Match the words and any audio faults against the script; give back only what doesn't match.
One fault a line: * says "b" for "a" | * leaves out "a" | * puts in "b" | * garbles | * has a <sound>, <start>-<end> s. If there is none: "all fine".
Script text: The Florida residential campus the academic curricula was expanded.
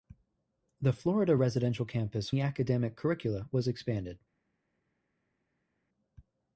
all fine